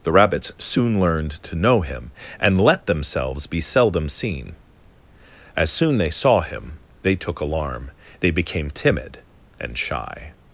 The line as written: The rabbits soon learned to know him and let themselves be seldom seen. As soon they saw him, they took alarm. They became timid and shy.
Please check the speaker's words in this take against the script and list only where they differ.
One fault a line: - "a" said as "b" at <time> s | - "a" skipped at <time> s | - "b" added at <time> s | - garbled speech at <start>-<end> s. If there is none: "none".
none